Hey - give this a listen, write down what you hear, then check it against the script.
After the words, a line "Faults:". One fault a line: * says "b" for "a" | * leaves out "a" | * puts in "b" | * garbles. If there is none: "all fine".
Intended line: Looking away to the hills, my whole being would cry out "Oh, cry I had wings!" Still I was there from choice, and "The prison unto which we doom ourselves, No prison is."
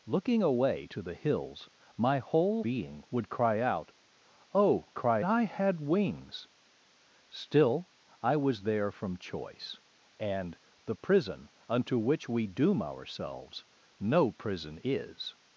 Looking away to the hills, my whole being would cry out "Oh, cry I had wings!" Still I was there from choice, and "The prison unto which we doom ourselves, No prison is."
Faults:
all fine